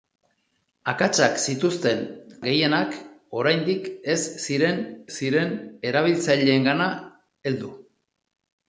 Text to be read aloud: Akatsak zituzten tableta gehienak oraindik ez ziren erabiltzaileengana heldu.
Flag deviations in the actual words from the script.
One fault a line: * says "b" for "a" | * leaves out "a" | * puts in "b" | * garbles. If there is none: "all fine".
* leaves out "tableta"
* puts in "ziren"